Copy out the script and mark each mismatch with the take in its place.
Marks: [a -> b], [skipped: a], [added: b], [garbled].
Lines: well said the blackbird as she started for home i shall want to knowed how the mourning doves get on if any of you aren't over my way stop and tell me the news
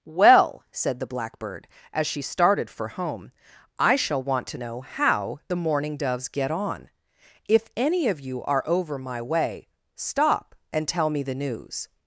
well said the blackbird as she started for home i shall want to [knowed -> know] how the mourning doves get on if any of you [aren't -> are] over my way stop and tell me the news